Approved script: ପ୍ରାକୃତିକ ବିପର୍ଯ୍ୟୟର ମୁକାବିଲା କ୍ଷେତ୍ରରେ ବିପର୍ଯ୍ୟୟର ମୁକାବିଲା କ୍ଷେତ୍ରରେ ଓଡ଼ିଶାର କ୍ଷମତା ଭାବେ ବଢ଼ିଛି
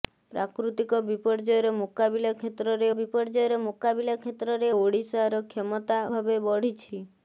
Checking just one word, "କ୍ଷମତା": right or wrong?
right